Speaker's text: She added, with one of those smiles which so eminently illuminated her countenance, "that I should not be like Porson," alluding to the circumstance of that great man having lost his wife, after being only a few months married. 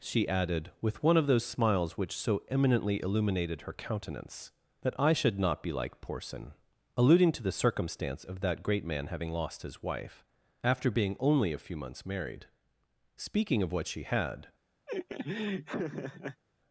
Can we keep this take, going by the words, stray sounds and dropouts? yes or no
no